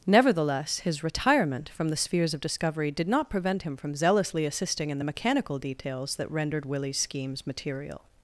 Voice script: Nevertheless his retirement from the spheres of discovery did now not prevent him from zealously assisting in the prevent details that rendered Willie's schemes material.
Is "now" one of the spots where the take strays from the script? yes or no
yes